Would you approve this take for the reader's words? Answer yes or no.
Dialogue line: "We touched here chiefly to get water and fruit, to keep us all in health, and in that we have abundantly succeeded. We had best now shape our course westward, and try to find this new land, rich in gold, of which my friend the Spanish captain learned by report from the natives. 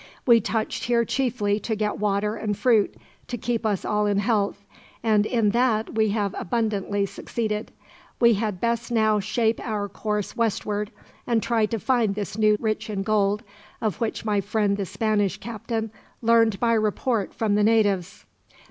no